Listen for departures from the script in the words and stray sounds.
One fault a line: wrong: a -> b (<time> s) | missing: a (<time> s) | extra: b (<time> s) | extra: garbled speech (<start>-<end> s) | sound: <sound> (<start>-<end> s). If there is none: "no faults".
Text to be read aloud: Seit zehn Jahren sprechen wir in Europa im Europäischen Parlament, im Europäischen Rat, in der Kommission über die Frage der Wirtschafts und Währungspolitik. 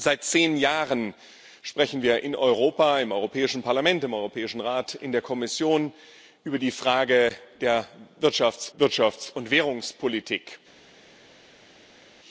extra: Wirtschafts (8.8 s)